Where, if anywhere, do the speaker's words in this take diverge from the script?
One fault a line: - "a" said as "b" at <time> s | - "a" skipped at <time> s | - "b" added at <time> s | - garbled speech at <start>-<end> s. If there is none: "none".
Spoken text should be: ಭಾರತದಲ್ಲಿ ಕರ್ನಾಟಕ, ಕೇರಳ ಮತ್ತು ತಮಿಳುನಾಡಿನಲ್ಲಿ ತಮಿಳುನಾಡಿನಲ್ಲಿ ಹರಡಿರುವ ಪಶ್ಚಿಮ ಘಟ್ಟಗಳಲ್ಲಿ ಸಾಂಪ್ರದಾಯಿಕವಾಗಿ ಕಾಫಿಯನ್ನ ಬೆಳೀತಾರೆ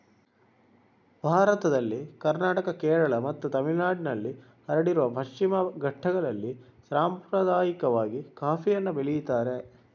- "ತಮಿಳುನಾಡಿನಲ್ಲಿ" skipped at 4.3 s